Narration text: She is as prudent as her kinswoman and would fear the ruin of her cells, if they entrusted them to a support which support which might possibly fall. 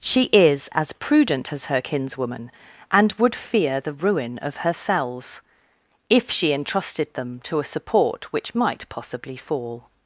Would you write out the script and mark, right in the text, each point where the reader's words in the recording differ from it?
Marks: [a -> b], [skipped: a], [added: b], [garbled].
She is as prudent as her kinswoman and would fear the ruin of her cells, if [they -> she] entrusted them to a support which [skipped: support which] might possibly fall.